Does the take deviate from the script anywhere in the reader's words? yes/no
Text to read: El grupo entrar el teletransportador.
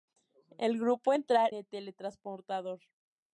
no